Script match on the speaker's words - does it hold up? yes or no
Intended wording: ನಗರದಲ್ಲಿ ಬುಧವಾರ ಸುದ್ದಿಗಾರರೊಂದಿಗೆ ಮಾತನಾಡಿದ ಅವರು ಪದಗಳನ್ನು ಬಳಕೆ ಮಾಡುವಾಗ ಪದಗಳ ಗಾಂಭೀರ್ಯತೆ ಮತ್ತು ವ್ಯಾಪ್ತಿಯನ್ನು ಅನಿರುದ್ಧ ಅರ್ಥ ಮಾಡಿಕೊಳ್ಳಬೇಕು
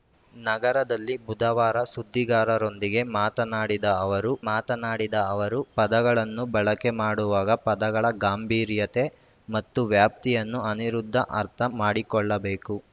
no